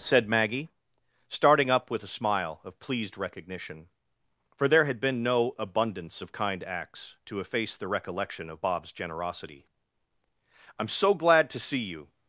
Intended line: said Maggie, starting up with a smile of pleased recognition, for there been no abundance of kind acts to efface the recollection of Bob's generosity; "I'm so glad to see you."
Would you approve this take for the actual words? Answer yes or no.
no